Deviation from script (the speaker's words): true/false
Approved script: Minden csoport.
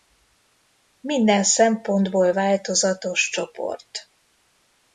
true